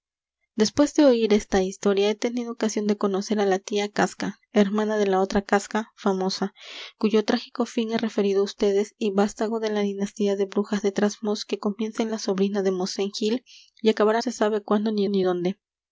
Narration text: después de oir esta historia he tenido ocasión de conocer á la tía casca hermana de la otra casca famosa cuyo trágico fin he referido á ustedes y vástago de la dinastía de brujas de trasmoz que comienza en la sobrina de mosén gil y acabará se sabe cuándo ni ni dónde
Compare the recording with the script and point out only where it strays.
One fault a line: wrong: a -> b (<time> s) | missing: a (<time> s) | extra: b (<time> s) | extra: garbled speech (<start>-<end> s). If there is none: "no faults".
no faults